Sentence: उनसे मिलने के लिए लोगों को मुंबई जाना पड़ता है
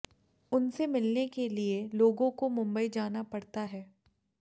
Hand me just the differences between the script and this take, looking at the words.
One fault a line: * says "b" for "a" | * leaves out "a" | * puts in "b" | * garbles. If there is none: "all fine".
all fine